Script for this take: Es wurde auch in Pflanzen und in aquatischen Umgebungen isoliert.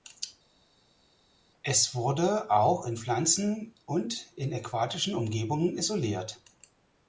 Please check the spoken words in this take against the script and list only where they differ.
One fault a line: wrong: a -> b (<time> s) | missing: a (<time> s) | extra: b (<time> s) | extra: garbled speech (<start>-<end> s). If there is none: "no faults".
no faults